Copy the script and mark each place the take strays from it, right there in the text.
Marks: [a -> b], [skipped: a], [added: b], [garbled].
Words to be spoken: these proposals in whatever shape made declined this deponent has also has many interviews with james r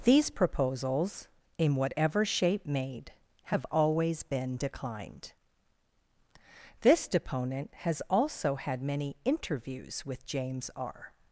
these proposals in whatever shape made [added: have always been] declined this deponent has also [has -> had] many interviews with james r